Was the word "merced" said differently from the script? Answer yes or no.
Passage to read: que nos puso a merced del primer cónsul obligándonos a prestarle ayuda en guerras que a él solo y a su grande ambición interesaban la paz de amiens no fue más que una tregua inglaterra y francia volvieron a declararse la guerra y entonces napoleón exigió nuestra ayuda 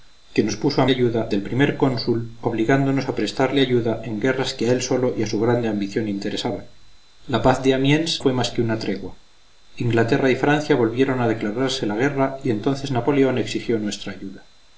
yes